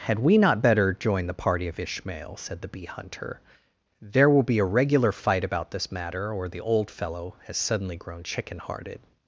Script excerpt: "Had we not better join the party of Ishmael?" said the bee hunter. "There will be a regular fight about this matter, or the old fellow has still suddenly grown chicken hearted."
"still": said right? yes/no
no